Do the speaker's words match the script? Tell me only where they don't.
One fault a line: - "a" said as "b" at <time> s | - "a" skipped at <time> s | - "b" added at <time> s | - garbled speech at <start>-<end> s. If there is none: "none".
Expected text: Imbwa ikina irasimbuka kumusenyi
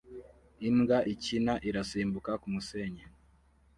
none